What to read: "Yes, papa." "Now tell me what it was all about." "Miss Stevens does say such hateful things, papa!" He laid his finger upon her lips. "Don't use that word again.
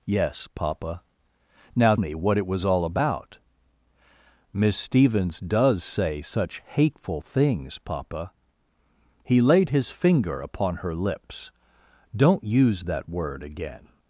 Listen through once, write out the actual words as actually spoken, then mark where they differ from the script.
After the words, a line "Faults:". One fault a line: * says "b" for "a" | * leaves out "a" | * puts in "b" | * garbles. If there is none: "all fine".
"Yes, papa." "Now me what it was all about." "Miss Stevens does say such hateful things, papa!" He laid his finger upon her lips. "Don't use that word again.
Faults:
* leaves out "tell"